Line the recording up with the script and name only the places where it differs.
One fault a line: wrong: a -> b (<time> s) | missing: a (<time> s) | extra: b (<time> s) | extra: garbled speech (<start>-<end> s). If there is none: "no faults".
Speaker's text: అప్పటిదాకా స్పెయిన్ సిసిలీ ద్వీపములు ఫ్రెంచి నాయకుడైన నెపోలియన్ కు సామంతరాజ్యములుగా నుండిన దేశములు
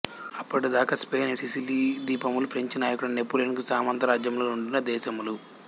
no faults